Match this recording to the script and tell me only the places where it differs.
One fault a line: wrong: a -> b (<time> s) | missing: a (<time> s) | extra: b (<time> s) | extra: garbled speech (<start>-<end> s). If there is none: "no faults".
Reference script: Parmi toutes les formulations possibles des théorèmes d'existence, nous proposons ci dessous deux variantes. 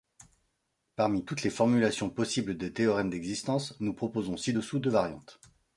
no faults